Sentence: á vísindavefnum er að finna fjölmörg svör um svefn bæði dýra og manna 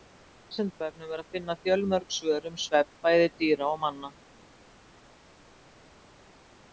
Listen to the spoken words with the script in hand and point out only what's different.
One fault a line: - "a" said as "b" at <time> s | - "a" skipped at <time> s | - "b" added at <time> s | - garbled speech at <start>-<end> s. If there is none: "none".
none